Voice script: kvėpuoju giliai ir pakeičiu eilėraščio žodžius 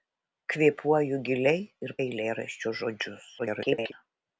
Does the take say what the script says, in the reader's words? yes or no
no